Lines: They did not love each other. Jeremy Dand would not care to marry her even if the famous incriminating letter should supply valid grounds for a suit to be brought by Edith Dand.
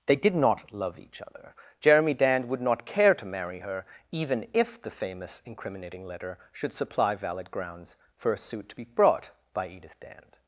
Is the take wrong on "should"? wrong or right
right